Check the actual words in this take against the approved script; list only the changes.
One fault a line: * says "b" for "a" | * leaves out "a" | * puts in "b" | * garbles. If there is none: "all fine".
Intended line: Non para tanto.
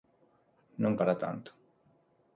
all fine